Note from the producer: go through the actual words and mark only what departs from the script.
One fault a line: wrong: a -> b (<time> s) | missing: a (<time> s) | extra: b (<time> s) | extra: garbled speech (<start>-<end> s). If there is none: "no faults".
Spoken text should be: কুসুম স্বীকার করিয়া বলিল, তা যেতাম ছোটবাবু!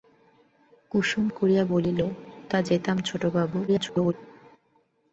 missing: স্বীকার (1.2 s)
extra: garbled speech (3.7-4.1 s)